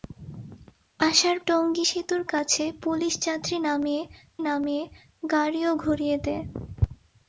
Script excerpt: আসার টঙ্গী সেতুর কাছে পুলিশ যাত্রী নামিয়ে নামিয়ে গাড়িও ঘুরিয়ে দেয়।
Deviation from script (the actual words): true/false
false